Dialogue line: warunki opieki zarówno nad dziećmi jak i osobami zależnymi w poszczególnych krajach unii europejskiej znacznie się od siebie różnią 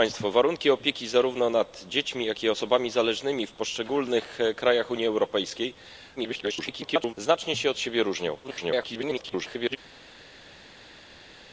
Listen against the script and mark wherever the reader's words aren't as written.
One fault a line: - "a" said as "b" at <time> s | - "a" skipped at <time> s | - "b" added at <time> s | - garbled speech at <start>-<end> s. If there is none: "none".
- garbled speech at 6.2-7.1 s
- garbled speech at 8.4-9.8 s